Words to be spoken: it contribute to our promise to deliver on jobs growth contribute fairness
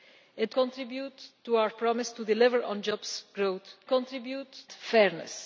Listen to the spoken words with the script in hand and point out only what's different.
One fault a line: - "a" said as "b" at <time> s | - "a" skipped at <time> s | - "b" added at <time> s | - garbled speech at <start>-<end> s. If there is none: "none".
none